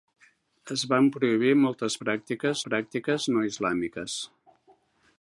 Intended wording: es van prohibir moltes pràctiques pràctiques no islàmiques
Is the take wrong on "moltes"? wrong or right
right